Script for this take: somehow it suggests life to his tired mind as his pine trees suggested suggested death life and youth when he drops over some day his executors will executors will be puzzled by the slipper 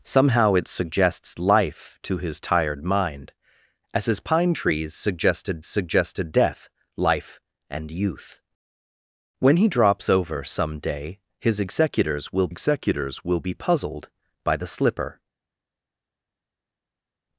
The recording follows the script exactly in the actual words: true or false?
true